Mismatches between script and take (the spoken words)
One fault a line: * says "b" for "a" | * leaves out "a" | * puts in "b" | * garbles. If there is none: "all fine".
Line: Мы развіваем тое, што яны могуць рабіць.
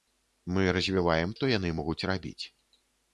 * leaves out "тое"